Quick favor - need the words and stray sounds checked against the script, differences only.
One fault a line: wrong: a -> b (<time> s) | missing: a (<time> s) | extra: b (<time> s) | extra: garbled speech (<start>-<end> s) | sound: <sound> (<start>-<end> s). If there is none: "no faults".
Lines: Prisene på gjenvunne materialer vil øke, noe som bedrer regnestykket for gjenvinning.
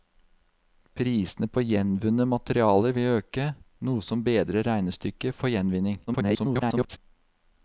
extra: garbled speech (6.1-7.0 s)